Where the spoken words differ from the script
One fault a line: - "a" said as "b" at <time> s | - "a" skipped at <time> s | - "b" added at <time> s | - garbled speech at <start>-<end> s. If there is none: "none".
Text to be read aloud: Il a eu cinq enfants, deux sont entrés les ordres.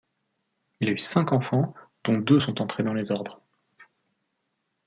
- "dont" added at 2.0 s
- "dans" added at 2.8 s